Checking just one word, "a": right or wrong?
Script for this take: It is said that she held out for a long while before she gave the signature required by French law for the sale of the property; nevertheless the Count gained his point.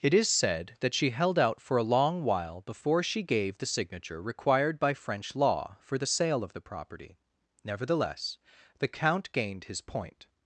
right